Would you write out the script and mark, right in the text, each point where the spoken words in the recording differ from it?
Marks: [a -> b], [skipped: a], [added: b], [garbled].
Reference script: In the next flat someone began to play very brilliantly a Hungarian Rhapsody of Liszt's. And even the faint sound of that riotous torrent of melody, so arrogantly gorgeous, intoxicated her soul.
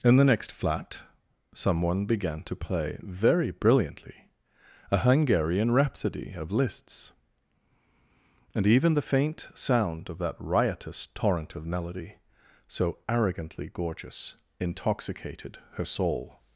In the next flat someone began to play very brilliantly a Hungarian Rhapsody of Liszt's. And even the faint sound of that riotous torrent of melody, so arrogantly gorgeous, intoxicated her soul.